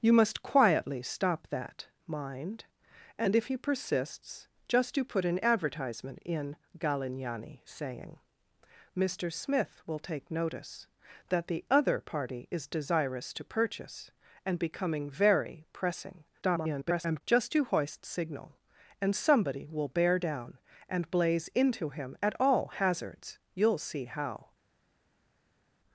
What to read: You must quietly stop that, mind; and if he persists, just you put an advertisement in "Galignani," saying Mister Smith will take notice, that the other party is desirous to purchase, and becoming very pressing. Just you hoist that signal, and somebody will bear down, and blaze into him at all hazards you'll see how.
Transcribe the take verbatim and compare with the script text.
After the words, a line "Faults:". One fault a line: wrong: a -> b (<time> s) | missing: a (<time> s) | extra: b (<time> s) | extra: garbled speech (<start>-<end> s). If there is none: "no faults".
You must quietly stop that, mind; and if he persists, just you put an advertisement in "Galignani," saying Mister Smith will take notice, that the other party is desirous to purchase, and becoming very pressing. [garbled] Just you hoist signal, and somebody will bear down, and blaze into him at all hazards you'll see how.
Faults:
extra: garbled speech (16.4-17.2 s)
missing: that (18.0 s)